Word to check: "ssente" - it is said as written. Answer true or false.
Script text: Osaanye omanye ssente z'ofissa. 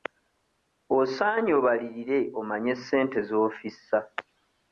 true